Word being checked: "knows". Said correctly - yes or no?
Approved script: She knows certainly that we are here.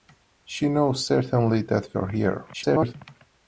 yes